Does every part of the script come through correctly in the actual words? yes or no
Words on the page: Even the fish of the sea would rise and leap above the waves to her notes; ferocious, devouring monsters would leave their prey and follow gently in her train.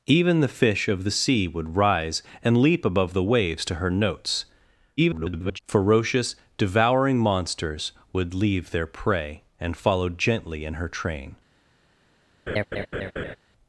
no